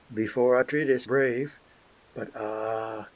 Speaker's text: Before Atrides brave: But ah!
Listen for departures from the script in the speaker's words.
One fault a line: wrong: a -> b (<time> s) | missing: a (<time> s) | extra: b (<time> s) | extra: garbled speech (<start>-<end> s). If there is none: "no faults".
no faults